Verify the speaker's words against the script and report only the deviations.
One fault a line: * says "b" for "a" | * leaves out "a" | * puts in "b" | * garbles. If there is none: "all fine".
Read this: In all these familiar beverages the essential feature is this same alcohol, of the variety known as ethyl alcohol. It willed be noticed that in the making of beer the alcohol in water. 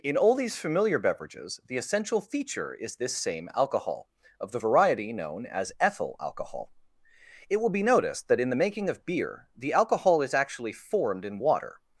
* says "will" for "willed"
* puts in "is actually formed"